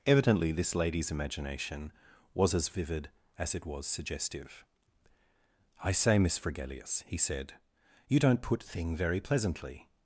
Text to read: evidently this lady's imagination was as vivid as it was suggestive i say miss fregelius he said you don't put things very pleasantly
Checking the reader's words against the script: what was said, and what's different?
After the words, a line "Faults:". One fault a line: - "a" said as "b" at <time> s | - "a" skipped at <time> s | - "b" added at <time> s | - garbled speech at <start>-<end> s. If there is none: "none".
evidently this lady's imagination was as vivid as it was suggestive i say miss fregelius he said you don't put thing very pleasantly
Faults:
- "things" said as "thing" at 8.6 s